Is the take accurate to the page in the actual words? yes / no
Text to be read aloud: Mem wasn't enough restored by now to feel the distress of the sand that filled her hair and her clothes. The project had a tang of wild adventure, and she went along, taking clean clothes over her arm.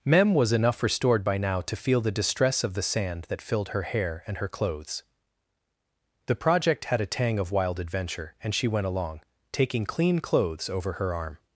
no